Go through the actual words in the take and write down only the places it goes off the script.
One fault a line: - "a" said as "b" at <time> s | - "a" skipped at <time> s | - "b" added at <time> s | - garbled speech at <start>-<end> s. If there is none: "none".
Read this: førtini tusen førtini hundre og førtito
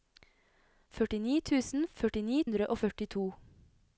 none